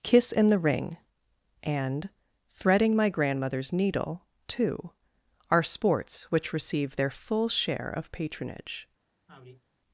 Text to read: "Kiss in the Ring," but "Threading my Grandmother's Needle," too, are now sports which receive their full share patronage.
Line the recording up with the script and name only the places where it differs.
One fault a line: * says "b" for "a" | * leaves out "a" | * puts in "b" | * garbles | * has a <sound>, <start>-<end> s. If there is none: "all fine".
* says "and" for "but"
* leaves out "now"
* puts in "of"
* has a sigh, 9.3-9.6 s